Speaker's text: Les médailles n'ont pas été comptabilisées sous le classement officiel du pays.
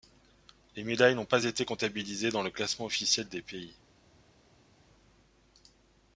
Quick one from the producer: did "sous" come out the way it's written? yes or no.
no